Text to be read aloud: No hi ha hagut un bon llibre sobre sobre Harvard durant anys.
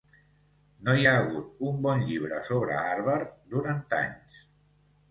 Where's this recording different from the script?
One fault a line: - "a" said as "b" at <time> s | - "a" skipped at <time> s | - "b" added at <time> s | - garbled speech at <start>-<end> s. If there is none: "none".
- "sobre" skipped at 2.8 s